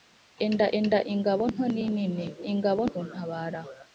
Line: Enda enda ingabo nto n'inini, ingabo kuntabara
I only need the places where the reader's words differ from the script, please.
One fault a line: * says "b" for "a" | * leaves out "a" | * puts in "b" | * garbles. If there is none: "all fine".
all fine